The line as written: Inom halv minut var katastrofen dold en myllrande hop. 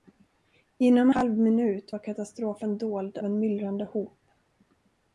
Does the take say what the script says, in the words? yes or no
yes